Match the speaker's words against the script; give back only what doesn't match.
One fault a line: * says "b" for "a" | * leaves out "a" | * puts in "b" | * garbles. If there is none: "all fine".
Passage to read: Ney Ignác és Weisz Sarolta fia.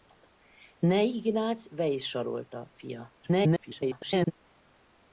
* leaves out "és"
* garbles